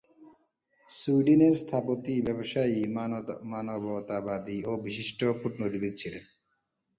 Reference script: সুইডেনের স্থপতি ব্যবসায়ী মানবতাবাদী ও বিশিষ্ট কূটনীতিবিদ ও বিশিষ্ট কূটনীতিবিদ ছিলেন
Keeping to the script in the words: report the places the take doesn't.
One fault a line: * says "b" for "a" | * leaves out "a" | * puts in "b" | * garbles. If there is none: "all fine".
* leaves out "ও বিশিষ্ট কূটনীতিবিদ"